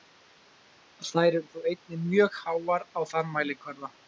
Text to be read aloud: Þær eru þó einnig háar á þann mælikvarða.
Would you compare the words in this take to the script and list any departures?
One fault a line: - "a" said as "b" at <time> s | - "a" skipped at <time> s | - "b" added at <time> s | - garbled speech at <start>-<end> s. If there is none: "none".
- "mjög" added at 2.1 s